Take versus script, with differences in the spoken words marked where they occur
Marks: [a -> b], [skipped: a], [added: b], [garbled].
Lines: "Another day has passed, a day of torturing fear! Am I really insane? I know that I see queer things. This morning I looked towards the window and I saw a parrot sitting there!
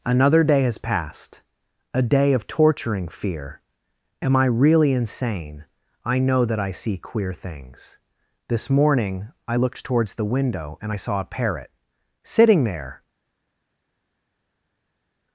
"Another day has passed, a day of torturing fear! Am I really insane? I know that I see queer things. This morning I looked towards the window and I saw a parrot sitting there!